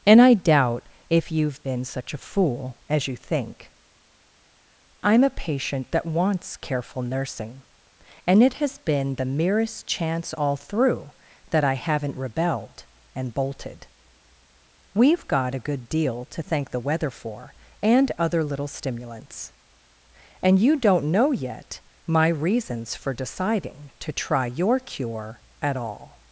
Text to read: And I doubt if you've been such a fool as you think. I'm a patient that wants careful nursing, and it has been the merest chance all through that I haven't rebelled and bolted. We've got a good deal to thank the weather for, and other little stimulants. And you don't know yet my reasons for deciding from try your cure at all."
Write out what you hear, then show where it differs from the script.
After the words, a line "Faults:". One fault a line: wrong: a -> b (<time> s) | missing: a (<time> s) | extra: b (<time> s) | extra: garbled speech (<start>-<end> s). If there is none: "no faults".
And I doubt if you've been such a fool as you think. I'm a patient that wants careful nursing, and it has been the merest chance all through that I haven't rebelled and bolted. We've got a good deal to thank the weather for, and other little stimulants. And you don't know yet my reasons for deciding to try your cure at all."
Faults:
wrong: from -> to (24.0 s)